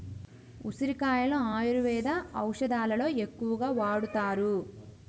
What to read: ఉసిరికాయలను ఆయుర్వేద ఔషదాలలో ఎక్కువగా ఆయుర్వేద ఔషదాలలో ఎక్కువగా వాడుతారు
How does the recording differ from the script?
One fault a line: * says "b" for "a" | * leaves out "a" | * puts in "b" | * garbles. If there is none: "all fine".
* leaves out "ఆయుర్వేద ఔషదాలలో ఎక్కువగా"